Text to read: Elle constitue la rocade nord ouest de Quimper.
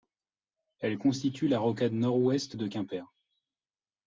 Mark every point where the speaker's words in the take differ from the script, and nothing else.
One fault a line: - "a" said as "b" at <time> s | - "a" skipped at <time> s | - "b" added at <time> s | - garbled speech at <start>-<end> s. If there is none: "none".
none